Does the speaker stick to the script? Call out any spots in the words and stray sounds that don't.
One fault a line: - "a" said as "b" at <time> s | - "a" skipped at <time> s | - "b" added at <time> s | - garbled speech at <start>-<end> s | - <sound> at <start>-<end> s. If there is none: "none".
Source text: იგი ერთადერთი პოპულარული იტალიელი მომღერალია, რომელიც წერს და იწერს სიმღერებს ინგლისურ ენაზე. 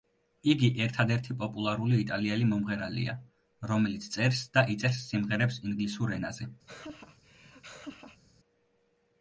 - laugh at 6.7-8.2 s